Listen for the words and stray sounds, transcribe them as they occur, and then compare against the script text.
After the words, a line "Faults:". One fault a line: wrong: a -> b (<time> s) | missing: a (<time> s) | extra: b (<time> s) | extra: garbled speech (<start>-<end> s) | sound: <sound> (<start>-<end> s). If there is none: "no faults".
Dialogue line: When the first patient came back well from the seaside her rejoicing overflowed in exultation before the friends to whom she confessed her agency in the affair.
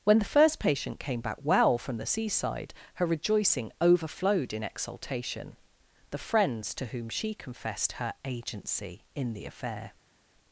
When the first patient came back well from the seaside her rejoicing overflowed in exultation the friends to whom she confessed her agency in the affair.
Faults:
missing: before (5.6 s)